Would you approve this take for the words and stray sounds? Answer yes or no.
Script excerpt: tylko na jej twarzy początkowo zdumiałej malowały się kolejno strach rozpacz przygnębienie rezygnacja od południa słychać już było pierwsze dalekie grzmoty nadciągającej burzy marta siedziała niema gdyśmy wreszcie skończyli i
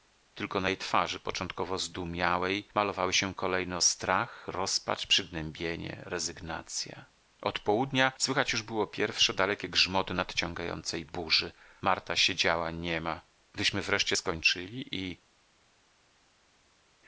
yes